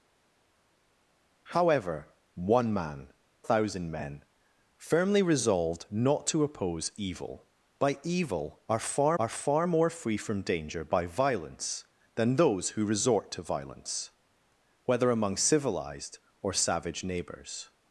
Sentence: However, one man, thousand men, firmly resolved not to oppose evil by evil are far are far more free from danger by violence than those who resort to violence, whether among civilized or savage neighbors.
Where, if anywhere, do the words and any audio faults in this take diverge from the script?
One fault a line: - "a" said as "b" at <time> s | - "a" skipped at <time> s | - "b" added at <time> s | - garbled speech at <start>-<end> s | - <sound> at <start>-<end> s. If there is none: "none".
none